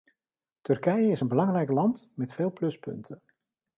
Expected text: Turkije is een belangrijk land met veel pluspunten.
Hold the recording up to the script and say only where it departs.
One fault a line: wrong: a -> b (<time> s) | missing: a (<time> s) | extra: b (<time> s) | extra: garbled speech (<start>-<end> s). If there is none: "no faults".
no faults